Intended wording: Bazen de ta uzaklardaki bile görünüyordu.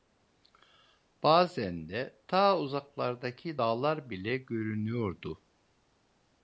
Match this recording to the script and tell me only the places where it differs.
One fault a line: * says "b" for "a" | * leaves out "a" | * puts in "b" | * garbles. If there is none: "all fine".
* puts in "dağlar"